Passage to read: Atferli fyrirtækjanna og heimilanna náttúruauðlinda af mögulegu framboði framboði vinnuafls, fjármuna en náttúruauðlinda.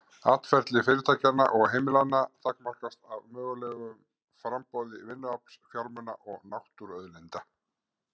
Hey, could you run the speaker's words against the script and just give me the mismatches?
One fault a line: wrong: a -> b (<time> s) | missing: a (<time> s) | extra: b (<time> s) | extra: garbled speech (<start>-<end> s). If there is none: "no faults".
wrong: náttúruauðlinda -> takmarkast (2.5 s)
missing: framboði (5.0 s)
wrong: en -> og (6.3 s)